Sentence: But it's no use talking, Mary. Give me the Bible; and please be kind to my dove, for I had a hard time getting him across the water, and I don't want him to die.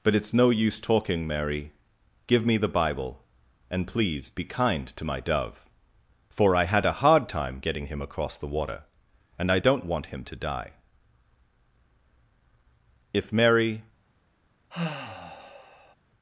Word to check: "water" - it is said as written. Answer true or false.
true